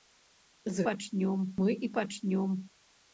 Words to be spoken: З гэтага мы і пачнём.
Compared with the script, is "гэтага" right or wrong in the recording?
wrong